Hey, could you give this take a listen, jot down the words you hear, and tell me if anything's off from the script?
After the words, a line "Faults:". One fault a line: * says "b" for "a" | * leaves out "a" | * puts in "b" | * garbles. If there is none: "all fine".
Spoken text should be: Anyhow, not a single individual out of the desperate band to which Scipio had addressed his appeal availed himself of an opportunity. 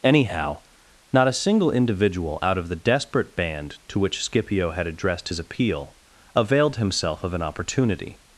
Anyhow, not a single individual out of the desperate band to which Scipio had addressed his appeal availed himself of an opportunity.
Faults:
all fine